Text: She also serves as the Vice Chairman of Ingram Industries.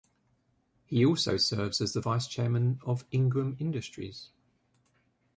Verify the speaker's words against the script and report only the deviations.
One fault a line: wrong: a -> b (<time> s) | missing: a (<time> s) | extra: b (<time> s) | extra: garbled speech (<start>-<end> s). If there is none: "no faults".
wrong: She -> He (0.9 s)